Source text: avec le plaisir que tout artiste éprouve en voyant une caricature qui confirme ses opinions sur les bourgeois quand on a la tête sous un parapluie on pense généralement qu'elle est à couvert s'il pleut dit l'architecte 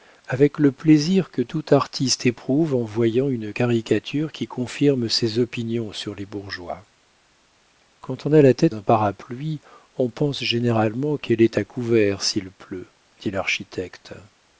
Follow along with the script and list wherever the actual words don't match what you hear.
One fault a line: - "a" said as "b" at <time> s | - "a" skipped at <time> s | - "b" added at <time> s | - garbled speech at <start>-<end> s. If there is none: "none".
- "sous" skipped at 8.7 s